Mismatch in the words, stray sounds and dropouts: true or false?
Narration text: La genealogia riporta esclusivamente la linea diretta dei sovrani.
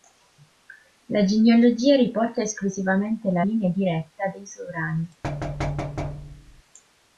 true